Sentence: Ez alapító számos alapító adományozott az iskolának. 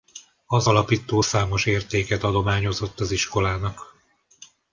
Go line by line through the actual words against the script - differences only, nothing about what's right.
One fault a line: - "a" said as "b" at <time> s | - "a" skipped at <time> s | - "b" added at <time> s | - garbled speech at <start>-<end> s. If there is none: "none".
- "Ez" said as "Az" at 0.5 s
- "alapító" said as "értéket" at 1.7 s